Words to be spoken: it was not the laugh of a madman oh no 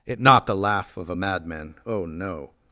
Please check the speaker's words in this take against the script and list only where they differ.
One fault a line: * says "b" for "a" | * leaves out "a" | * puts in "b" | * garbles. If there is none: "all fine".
* leaves out "was"